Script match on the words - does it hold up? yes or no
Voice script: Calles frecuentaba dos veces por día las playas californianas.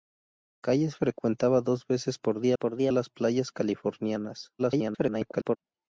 no